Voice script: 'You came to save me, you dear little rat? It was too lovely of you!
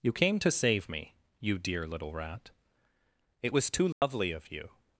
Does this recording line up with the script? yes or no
yes